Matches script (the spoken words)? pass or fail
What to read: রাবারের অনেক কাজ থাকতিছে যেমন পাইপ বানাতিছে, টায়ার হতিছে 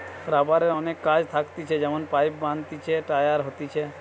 pass